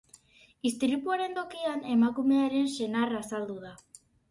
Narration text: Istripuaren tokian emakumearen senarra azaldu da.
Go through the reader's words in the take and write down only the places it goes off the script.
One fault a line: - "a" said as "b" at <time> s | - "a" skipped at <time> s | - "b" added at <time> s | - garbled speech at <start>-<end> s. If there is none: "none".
none